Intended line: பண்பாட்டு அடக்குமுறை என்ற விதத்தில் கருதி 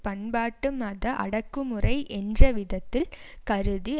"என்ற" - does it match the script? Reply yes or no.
yes